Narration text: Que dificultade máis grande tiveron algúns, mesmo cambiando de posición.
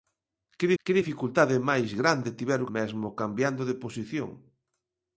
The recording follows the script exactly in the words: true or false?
false